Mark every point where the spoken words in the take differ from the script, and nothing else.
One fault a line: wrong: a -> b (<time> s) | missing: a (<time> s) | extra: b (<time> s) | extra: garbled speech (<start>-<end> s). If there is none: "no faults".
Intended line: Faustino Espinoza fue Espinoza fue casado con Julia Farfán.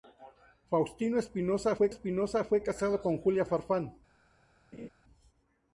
no faults